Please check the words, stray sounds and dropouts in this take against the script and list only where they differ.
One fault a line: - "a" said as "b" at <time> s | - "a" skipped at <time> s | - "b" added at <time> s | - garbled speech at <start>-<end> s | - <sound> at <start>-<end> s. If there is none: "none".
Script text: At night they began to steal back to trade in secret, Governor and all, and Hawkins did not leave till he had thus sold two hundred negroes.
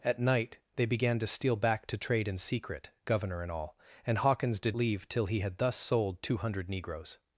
- "not" skipped at 4.8 s